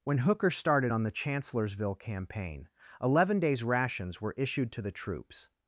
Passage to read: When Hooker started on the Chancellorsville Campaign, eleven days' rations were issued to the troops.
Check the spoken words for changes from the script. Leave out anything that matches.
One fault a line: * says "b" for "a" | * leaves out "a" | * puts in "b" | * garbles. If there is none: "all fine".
all fine